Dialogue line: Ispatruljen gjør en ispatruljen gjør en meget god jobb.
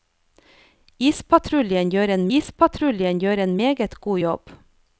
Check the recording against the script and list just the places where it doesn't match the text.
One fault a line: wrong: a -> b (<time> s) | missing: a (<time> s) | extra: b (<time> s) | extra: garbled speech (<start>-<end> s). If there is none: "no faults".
no faults